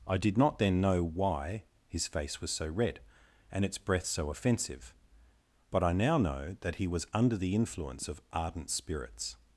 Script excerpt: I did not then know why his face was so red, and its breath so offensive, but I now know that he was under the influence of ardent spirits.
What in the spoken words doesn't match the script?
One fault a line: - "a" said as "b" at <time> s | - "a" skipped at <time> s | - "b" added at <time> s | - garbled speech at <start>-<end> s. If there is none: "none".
none